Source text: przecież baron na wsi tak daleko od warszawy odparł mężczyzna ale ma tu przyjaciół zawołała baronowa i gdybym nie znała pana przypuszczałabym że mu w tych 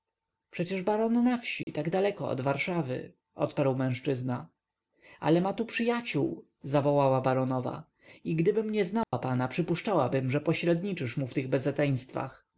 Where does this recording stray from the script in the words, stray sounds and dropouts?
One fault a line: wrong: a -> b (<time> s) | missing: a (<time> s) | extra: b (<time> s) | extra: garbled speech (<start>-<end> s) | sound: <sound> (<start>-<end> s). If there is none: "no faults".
sound: dropout (1.6-1.7 s)
sound: dropout (9.0-9.1 s)
extra: pośredniczysz (10.4 s)